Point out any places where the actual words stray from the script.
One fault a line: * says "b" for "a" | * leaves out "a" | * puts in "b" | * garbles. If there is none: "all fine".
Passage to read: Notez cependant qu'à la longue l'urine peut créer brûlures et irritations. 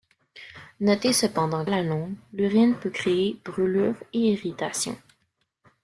* leaves out "qu'à"